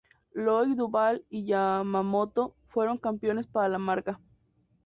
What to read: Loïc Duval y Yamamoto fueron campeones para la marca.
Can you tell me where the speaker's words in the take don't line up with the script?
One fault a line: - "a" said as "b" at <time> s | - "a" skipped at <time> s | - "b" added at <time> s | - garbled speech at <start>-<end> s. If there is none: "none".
none